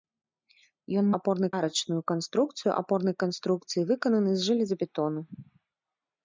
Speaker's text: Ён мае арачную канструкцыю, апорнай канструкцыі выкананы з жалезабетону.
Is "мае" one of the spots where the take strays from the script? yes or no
yes